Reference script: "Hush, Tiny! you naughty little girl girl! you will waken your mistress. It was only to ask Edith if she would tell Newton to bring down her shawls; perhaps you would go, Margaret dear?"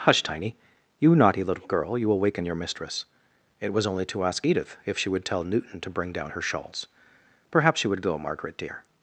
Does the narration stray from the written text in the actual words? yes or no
yes